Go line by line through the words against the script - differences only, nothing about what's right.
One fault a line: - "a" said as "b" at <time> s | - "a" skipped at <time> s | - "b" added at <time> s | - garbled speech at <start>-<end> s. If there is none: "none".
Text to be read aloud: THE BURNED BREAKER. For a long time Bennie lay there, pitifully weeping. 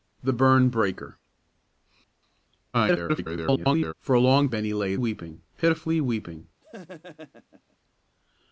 - garbled speech at 2.7-3.9 s
- "time" skipped at 4.5 s
- "there" said as "weeping" at 4.9 s